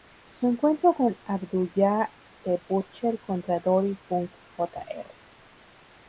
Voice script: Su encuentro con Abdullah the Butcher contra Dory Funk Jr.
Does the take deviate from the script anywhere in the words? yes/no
no